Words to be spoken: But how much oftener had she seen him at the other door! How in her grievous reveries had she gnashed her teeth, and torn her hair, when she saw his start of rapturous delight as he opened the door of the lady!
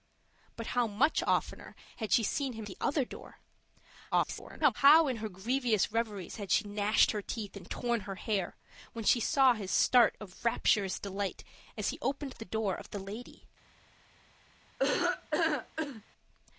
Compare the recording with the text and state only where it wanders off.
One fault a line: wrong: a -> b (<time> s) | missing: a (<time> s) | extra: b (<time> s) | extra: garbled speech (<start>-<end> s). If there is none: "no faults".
missing: at (2.7 s)
extra: garbled speech (4.1-4.7 s)